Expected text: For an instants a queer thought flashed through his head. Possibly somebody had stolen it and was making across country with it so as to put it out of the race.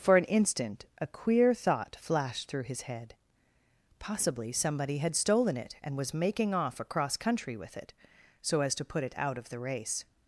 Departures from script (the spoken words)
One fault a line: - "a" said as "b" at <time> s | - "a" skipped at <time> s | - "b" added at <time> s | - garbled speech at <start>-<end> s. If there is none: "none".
- "instants" said as "instant" at 0.2 s
- "off" added at 6.5 s